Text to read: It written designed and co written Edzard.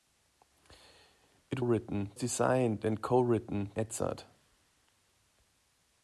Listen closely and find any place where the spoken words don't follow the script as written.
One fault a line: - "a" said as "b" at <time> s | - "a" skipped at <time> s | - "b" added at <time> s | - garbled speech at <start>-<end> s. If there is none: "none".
none